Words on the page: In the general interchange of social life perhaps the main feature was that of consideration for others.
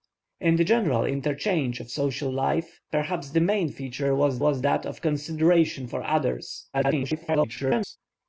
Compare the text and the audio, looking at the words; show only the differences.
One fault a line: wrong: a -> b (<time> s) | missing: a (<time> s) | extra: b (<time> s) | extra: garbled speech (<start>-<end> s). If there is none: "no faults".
extra: was (4.4 s)
extra: garbled speech (6.7-8.0 s)